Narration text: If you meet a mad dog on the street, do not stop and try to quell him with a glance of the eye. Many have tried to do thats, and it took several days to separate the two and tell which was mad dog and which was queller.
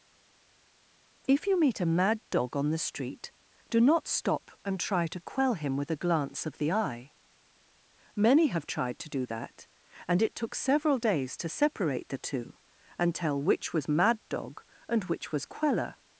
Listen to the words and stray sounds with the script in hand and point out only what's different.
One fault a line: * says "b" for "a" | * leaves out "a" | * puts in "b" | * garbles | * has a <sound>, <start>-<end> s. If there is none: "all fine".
* says "that" for "thats"